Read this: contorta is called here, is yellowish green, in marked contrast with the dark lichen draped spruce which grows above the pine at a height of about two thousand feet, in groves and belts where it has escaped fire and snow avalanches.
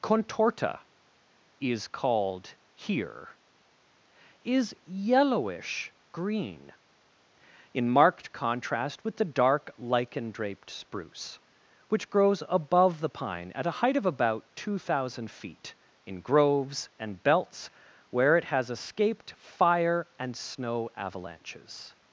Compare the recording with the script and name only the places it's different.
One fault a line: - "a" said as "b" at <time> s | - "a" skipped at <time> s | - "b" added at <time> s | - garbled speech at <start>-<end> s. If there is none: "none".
none